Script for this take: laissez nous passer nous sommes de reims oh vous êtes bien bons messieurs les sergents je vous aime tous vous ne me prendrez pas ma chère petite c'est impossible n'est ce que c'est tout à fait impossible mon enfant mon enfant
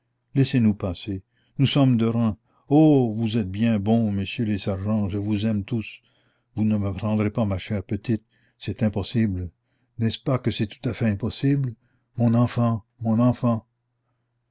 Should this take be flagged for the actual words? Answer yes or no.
yes